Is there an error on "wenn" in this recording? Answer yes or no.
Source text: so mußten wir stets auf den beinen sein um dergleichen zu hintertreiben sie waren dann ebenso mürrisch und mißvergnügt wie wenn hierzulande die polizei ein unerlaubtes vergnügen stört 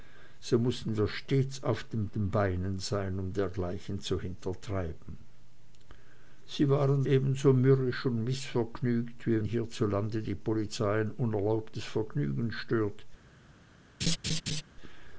yes